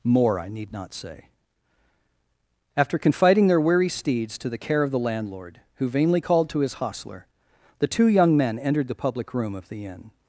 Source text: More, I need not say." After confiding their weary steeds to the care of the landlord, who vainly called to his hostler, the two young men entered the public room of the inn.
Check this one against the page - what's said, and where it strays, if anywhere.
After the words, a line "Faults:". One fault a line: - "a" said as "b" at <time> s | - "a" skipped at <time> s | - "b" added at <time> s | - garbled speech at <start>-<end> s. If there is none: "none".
More, I need not say." After confiding their weary steeds to the care of the landlord, who vainly called to his hostler, the two young men entered the public room of the inn.
Faults:
none